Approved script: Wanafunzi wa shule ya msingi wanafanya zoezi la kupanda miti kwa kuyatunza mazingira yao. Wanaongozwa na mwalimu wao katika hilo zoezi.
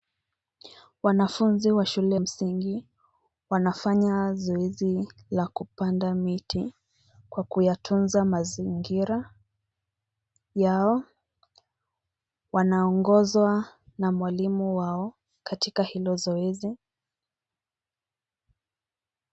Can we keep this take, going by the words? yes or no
no